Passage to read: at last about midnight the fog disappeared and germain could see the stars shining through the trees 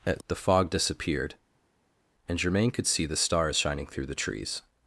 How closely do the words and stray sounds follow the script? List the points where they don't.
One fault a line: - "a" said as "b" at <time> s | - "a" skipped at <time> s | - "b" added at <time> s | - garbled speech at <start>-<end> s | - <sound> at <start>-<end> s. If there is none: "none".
- "last about midnight" skipped at 0.2 s